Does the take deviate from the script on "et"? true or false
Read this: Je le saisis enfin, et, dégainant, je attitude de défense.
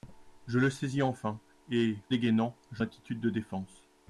false